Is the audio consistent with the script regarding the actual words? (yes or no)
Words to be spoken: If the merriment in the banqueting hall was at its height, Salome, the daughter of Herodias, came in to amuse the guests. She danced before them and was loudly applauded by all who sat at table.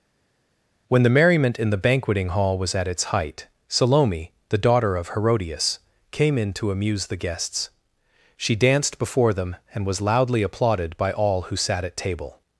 no